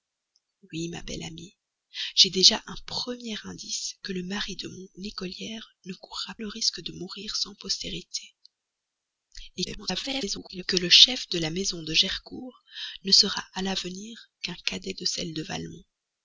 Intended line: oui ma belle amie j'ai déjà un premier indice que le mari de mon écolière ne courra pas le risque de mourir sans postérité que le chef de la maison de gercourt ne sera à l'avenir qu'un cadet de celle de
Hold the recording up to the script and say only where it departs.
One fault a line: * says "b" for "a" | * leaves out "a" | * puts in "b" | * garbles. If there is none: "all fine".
* leaves out "pas"
* garbles